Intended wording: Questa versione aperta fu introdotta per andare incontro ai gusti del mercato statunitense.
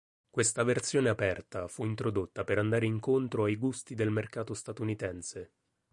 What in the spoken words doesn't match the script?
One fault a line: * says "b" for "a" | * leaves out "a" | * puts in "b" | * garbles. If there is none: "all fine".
all fine